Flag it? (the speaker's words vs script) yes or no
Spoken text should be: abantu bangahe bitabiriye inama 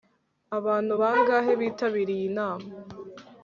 no